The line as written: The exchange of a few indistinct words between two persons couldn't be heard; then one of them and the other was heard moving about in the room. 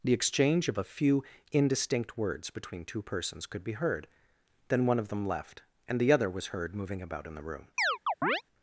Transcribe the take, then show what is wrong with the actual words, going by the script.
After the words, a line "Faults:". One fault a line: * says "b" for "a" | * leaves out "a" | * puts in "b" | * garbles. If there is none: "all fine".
The exchange of a few indistinct words between two persons could be heard; then one of them left, and the other was heard moving about in the room.
Faults:
* says "could" for "couldn't"
* puts in "left"